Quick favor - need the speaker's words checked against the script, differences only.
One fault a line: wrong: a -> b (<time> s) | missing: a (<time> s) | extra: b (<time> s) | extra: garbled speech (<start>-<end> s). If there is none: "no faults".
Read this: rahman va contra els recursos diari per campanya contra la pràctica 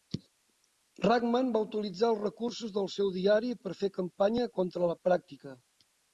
wrong: contra -> utilitzar (1.6 s)
extra: del seu (2.8 s)
extra: fer (3.8 s)